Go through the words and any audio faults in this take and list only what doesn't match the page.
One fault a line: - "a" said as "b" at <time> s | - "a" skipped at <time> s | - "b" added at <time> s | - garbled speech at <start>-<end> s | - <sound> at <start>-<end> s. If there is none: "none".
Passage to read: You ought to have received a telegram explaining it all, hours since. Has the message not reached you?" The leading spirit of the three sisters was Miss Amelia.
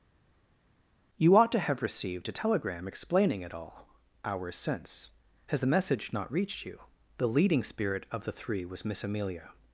- "sisters" skipped at 8.6 s